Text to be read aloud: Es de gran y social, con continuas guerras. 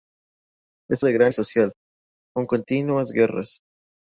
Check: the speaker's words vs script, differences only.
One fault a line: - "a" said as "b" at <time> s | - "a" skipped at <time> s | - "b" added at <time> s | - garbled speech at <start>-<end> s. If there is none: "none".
none